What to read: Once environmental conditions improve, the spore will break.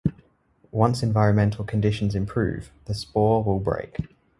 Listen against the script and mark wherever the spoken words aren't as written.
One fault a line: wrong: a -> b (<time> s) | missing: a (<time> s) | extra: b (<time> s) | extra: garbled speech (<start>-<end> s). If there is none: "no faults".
no faults